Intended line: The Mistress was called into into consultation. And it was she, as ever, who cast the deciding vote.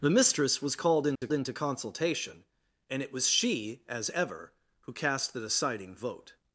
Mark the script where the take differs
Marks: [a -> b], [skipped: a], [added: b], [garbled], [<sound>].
The Mistress was called into [dropout] into consultation. And it was she, as ever, who cast the deciding vote.